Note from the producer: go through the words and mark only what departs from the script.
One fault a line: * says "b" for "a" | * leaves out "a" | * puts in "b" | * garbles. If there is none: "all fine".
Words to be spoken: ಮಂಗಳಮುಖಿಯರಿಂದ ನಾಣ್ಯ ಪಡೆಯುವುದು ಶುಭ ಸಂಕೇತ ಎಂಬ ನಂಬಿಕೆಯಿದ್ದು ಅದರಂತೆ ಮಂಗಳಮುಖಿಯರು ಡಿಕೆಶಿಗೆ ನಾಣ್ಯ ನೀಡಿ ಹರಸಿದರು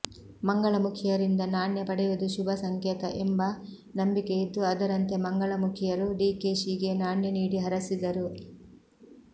all fine